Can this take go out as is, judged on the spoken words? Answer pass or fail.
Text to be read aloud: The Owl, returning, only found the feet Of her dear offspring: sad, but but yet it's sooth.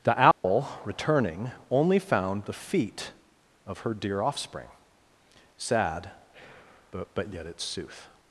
pass